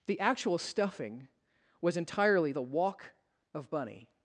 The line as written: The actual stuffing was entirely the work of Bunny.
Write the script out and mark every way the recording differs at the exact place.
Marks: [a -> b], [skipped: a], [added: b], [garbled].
The actual stuffing was entirely the [work -> walk] of Bunny.